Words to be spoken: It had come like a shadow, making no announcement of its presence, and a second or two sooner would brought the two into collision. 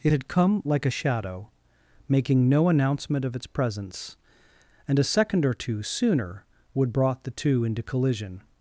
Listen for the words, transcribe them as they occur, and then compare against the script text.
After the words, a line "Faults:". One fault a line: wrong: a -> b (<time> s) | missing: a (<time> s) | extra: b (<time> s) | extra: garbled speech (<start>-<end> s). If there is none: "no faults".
It had come like a shadow, making no announcement of its presence, and a second or two sooner would brought the two into collision.
Faults:
no faults